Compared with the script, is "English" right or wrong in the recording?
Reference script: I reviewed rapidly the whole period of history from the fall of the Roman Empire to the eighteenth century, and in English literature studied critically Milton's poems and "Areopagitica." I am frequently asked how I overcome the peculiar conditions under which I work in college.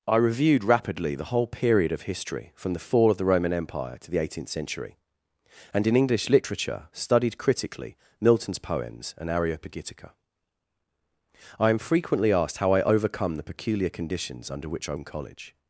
right